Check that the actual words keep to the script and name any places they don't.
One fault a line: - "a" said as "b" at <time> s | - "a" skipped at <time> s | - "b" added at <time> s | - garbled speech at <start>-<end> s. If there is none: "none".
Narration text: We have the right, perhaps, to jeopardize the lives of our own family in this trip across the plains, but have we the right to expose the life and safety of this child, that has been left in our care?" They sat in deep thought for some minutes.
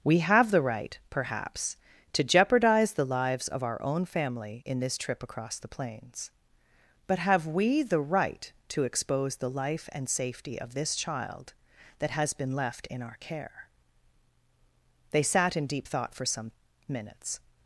none